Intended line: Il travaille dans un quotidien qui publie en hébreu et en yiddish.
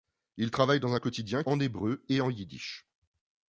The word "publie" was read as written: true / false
false